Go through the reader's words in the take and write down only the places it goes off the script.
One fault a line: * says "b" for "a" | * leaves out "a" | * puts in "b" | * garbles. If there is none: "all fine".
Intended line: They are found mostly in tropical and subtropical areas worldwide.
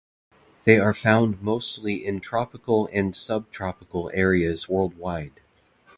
all fine